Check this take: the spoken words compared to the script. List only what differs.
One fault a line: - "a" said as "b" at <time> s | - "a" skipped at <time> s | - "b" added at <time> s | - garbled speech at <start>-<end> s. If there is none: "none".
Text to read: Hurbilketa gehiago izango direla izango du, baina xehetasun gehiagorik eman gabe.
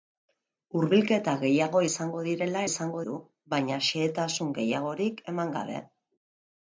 none